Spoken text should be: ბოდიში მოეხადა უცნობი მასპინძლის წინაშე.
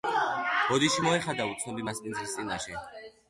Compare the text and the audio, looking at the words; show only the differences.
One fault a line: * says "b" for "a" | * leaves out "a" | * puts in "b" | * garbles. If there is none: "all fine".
all fine